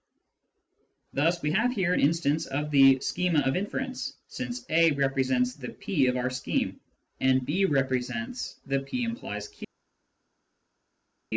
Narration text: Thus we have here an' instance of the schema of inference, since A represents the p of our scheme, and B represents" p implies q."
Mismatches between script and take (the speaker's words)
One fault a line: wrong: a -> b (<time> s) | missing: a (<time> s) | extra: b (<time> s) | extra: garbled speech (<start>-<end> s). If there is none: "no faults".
extra: the (8.6 s)